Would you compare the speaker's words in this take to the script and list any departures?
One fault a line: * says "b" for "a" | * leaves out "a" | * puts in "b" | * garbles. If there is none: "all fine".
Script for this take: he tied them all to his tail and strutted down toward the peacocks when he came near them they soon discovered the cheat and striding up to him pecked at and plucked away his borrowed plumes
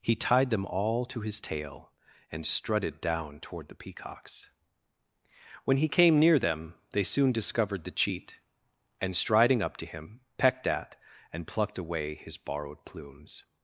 all fine